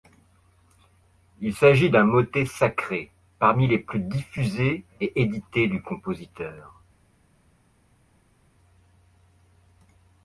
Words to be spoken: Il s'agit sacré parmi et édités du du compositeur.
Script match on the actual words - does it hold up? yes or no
no